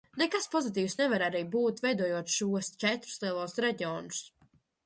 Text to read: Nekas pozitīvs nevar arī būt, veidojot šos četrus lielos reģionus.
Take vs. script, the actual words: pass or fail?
pass